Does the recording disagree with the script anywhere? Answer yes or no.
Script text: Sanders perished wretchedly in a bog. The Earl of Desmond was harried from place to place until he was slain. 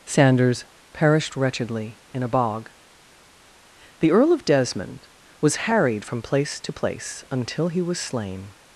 no